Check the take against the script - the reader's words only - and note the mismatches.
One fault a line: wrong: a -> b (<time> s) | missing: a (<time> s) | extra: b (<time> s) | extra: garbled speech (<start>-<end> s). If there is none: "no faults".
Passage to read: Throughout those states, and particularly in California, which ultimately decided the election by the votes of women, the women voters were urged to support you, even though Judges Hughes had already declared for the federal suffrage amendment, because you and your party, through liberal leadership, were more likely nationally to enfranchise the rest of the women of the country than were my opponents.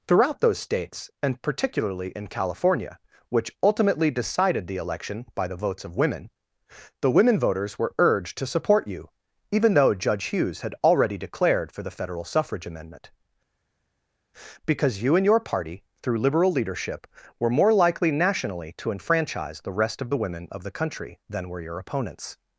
wrong: Judges -> Judge (9.9 s)
wrong: my -> your (21.6 s)